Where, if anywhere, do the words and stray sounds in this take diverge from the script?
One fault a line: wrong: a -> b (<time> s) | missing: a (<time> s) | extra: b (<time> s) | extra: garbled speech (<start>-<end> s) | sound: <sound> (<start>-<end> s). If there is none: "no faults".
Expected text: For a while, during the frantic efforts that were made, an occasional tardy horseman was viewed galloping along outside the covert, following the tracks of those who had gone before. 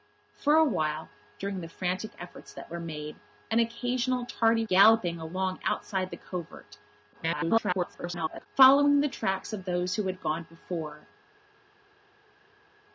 missing: horseman was viewed (4.6 s)
extra: garbled speech (7.1-8.5 s)